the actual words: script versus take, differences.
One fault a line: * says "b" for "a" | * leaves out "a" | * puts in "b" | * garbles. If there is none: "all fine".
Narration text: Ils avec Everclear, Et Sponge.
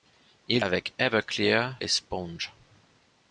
all fine